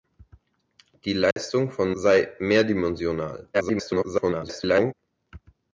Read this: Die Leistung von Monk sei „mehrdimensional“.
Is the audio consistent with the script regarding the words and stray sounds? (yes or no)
no